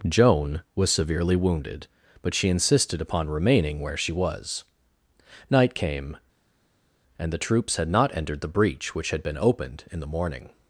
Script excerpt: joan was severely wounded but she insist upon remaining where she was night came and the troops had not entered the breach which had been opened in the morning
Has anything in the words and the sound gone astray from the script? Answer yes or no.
yes